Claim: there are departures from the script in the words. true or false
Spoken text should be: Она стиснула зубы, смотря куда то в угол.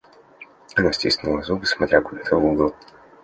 false